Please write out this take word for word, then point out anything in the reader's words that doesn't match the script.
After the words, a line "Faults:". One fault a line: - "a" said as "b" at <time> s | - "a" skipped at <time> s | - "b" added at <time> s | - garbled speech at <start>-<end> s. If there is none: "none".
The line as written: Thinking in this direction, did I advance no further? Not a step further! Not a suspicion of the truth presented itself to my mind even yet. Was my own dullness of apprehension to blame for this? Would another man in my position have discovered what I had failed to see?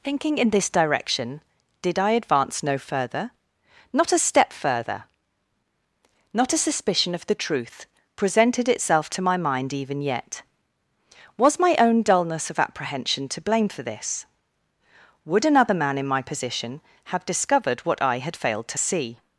Thinking in this direction, did I advance no further? Not a step further! Not a suspicion of the truth presented itself to my mind even yet. Was my own dullness of apprehension to blame for this? Would another man in my position have discovered what I had failed to see?
Faults:
none